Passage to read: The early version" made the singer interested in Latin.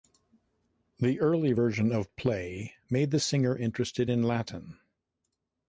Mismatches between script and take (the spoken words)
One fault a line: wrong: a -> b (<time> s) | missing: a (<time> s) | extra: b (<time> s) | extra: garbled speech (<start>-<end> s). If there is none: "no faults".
extra: of Play (1.9 s)